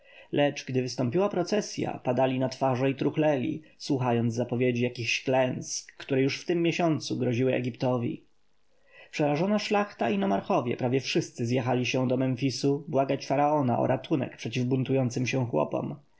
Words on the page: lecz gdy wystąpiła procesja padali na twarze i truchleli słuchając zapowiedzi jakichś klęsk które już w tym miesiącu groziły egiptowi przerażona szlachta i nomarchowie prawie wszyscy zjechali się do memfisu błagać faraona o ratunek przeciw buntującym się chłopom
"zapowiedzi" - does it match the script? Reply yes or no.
yes